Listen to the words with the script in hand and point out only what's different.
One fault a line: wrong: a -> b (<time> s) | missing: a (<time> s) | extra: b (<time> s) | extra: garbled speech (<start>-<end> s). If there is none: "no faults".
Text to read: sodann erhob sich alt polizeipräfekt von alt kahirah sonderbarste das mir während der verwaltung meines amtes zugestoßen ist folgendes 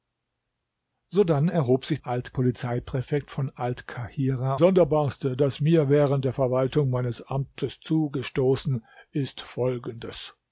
no faults